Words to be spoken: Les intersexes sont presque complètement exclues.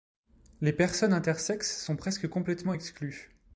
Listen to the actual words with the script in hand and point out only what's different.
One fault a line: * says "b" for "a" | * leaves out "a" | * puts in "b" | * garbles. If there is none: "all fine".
* puts in "personnes"